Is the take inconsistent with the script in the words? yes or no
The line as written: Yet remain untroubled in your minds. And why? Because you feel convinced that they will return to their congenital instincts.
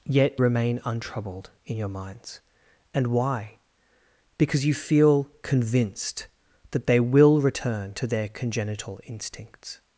no